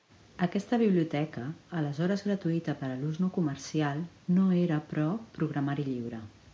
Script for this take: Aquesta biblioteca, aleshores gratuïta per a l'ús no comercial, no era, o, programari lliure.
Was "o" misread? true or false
true